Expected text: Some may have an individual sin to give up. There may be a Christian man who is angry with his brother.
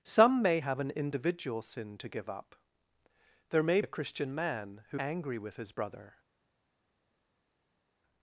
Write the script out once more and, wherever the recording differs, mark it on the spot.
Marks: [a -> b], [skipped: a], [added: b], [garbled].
Some may have an individual sin to give up. There may [skipped: be] a Christian man who [skipped: is] angry with his brother.